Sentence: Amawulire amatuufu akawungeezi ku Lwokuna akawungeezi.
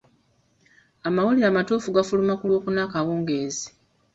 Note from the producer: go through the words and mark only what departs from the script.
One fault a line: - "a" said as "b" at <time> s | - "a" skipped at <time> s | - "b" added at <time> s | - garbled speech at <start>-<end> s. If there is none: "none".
- "akawungeezi" said as "gafuluma" at 1.9 s